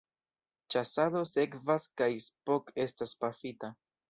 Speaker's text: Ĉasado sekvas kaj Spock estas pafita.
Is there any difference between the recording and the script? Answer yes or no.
no